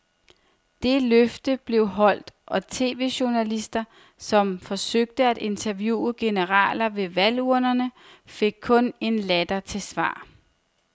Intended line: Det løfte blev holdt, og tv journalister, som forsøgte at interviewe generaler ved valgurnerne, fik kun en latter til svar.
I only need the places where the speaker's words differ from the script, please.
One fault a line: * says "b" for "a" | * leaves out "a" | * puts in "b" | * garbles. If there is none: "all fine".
all fine